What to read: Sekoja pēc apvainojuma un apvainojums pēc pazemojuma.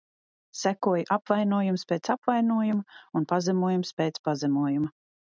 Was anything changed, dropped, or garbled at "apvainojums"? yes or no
yes